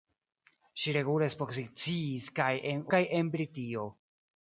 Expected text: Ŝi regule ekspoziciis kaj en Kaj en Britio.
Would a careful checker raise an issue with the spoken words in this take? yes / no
no